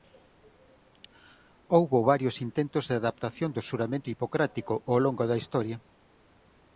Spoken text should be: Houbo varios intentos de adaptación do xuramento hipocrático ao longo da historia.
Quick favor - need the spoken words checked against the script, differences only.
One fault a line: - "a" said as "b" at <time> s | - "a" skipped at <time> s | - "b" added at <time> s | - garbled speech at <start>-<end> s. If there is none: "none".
none